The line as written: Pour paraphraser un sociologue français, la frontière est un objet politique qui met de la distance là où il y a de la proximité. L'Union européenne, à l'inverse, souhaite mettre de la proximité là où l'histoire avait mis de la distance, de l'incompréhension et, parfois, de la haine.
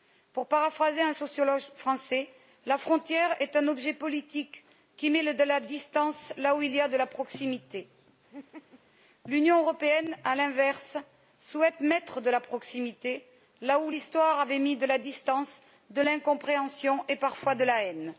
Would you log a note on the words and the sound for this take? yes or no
yes